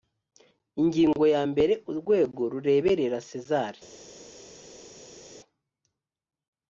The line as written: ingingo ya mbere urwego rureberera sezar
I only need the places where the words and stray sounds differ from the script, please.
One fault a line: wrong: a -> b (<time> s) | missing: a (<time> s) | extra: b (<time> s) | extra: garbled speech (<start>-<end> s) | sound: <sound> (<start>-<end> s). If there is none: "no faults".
no faults